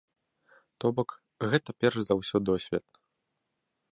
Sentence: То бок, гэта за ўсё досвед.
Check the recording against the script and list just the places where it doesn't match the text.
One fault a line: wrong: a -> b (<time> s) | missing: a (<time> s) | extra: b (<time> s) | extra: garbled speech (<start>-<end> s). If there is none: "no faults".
extra: перш (1.8 s)